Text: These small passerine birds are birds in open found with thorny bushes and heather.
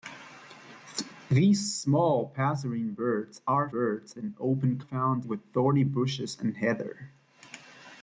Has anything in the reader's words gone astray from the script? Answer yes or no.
no